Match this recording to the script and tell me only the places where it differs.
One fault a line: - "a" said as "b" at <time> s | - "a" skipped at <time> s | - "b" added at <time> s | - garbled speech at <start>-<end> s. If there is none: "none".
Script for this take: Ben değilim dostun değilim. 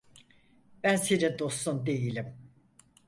- "değilim" said as "senin" at 0.9 s